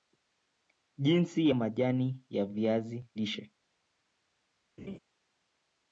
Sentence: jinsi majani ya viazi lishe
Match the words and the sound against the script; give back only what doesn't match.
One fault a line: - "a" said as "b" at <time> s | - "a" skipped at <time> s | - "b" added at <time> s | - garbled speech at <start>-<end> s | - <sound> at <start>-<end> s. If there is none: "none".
- laugh at 4.8-5.0 s